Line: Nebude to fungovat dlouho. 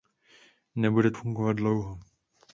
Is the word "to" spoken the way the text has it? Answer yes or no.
no